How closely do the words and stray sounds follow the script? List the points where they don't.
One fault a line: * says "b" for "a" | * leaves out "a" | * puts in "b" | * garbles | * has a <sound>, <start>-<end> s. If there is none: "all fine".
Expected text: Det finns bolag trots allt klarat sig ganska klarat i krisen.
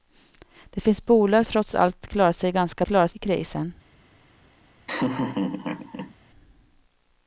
* has a laugh, 4.9-6.1 s